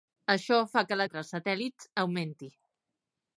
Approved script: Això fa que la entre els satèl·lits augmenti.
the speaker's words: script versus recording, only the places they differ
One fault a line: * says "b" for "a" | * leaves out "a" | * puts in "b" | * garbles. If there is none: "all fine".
all fine